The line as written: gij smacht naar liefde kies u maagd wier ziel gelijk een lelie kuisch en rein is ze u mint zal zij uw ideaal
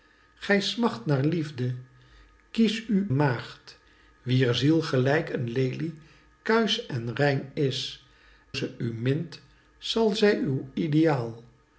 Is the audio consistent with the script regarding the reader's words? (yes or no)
yes